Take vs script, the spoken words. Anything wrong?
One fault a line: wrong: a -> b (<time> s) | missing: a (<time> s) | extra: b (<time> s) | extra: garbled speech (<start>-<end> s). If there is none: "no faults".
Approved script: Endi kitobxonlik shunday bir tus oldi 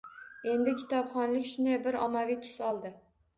extra: ommaviy (2.0 s)